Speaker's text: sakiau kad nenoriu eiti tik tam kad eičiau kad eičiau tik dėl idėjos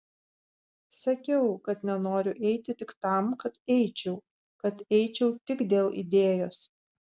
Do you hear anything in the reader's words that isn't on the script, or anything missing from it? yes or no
no